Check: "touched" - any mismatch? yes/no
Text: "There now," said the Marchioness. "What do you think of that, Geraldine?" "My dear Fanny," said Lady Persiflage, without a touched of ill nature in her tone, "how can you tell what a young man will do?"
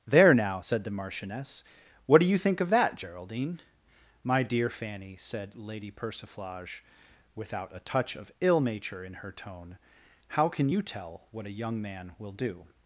yes